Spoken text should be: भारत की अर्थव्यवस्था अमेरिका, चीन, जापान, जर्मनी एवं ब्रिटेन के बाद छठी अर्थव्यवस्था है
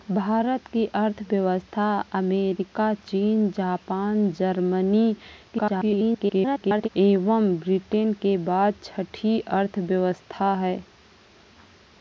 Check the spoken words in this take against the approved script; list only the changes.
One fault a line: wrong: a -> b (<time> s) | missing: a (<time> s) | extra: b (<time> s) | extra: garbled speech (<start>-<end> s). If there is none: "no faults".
extra: garbled speech (5.5-6.9 s)